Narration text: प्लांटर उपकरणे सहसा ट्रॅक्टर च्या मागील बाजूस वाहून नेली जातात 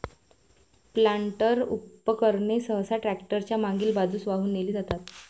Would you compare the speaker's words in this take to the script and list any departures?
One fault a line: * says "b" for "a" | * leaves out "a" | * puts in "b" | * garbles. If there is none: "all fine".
all fine